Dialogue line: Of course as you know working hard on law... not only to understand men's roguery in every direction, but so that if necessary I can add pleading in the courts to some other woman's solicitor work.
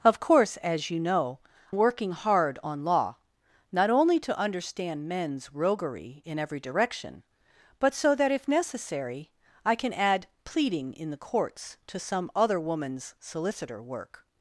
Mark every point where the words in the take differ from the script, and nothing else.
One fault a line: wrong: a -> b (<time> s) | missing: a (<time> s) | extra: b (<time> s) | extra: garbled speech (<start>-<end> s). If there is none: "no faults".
no faults